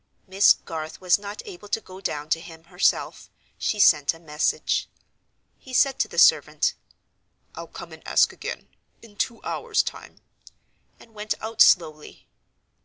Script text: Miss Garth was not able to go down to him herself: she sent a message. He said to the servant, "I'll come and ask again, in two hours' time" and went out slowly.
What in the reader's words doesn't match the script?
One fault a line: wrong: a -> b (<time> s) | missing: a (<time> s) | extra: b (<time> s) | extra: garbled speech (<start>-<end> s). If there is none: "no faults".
no faults